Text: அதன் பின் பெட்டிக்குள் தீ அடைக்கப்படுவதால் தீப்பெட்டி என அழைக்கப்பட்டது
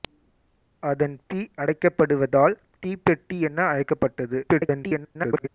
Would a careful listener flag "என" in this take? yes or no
no